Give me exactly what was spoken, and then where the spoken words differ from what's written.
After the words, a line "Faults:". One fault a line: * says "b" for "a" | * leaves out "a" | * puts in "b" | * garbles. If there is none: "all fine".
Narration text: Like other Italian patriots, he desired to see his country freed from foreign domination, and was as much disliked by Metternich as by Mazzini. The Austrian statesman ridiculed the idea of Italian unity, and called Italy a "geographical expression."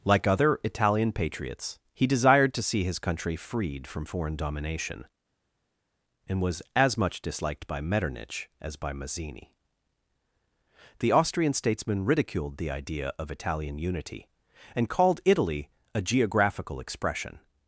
Like other Italian patriots, he desired to see his country freed from foreign domination, and was as much disliked by Metternich as by Mazzini. The Austrian statesman ridiculed the idea of Italian unity, and called Italy a "geographical expression."
Faults:
all fine